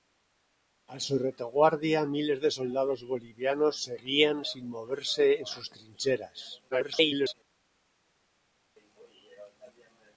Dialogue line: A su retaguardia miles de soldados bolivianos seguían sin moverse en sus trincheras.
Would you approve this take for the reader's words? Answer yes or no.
no